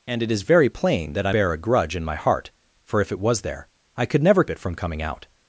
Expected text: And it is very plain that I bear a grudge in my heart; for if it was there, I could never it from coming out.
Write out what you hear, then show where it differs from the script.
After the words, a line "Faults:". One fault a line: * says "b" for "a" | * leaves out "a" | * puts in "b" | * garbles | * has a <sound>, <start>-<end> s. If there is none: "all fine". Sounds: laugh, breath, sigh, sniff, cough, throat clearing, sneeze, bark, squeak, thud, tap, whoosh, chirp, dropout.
And it is very plain that I bear a grudge in my heart; for if it was there, I could never it from coming out.
Faults:
all fine